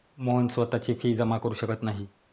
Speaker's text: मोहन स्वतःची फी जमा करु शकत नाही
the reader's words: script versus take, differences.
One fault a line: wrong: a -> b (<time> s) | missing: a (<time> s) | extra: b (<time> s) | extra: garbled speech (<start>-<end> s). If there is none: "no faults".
no faults